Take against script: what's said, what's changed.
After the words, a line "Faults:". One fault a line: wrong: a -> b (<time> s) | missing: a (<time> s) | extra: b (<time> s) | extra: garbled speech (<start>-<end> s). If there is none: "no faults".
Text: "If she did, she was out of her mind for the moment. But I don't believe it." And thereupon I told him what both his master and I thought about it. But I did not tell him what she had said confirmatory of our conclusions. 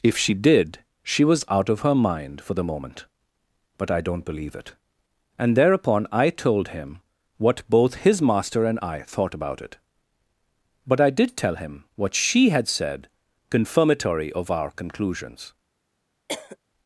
"If she did, she was out of her mind for the moment. But I don't believe it." And thereupon I told him what both his master and I thought about it. But I did tell him what she had said confirmatory of our conclusions.
Faults:
missing: not (11.4 s)